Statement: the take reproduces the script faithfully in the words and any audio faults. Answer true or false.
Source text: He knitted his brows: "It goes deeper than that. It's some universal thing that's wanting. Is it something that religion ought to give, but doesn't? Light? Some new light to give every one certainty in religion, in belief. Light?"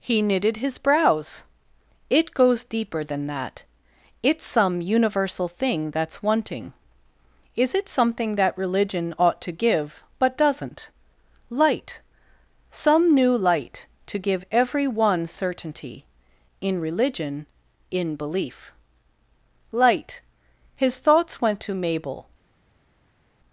false